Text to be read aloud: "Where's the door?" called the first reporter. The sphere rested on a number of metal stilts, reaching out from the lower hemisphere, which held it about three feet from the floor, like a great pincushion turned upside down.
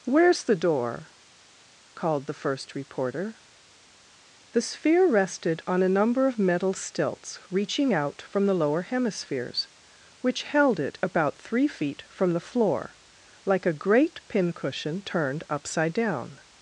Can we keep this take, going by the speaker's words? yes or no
no